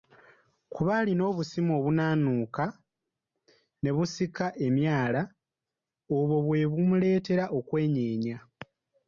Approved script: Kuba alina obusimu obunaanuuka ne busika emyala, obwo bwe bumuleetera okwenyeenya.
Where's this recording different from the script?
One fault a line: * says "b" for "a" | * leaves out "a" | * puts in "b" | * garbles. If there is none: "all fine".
all fine